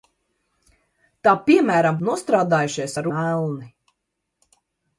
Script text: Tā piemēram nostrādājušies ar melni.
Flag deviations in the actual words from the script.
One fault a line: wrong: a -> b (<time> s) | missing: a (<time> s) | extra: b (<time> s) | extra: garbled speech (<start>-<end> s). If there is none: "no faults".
no faults